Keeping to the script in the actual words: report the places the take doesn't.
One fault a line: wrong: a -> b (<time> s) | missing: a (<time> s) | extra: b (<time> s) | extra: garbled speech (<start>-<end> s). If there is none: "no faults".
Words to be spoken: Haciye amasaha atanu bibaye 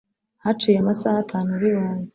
no faults